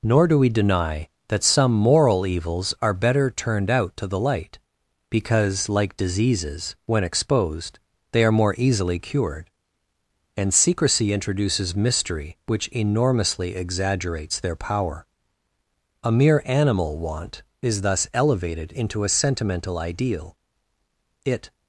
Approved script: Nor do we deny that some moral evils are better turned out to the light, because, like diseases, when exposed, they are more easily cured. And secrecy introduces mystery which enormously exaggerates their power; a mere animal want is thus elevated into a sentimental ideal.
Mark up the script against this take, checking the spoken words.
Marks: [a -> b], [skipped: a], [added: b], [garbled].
Nor do we deny that some moral evils are better turned out to the light, because, like diseases, when exposed, they are more easily cured. And secrecy introduces mystery which enormously exaggerates their power; a mere animal want is thus elevated into a sentimental ideal. [added: It]